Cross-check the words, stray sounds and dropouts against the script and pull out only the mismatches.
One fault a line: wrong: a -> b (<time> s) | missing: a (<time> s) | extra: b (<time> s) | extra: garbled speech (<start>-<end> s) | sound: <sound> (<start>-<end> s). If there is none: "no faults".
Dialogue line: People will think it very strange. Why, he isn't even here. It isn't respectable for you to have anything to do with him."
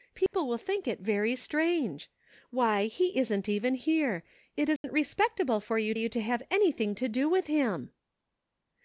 sound: dropout (0.3-0.3 s)
sound: dropout (4.8-4.8 s)
extra: you (5.9 s)